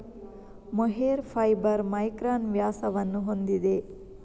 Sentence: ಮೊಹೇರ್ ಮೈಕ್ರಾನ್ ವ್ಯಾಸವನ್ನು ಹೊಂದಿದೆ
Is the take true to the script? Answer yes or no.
no